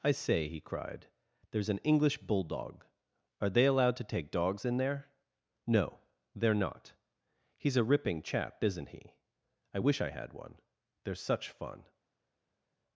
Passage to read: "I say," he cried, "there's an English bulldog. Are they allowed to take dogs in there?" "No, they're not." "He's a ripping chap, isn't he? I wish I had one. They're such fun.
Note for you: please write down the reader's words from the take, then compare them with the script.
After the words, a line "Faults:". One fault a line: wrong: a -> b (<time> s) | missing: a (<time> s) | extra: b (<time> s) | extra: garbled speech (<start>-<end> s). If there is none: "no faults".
"I say," he cried, "there's an English bulldog. Are they allowed to take dogs in there?" "No, they're not." "He's a ripping chap, isn't he? I wish I had one. They're such fun.
Faults:
no faults